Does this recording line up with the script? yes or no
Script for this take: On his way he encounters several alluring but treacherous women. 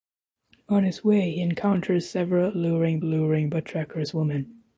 no